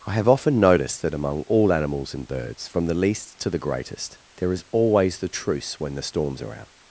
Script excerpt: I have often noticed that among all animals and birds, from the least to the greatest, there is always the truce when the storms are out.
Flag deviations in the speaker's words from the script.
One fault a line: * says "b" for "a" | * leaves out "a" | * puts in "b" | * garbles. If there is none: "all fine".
all fine